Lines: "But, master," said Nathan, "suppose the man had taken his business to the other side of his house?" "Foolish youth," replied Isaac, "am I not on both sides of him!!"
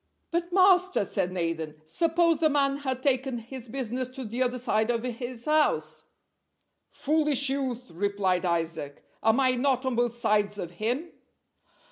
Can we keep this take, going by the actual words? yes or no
yes